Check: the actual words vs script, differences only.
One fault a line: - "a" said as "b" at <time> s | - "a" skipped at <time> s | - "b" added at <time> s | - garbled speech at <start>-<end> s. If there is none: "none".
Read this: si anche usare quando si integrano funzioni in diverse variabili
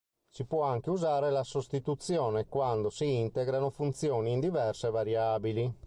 - "può" added at 0.5 s
- "la sostituzione" added at 1.3 s